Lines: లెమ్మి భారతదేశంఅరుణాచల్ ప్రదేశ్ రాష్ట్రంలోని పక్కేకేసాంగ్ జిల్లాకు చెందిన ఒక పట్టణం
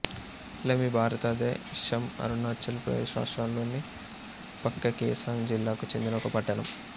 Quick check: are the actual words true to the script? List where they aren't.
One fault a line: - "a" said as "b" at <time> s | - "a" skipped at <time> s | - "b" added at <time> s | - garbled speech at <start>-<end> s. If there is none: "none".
none